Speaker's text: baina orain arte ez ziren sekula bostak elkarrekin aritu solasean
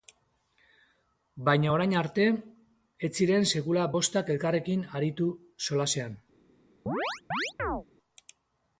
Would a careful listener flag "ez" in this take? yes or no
no